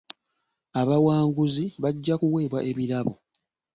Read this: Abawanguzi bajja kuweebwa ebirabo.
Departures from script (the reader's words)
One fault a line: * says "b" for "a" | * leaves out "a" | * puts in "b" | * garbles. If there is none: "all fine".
all fine